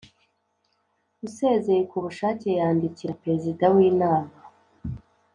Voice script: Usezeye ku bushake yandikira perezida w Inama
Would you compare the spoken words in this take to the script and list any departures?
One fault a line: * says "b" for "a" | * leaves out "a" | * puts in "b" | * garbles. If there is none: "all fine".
all fine